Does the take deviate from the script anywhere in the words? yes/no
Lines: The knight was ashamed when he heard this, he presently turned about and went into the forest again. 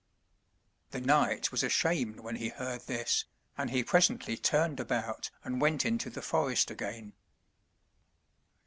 yes